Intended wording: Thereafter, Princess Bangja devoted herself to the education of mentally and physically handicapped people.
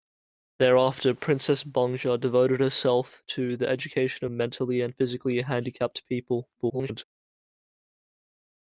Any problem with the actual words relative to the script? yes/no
yes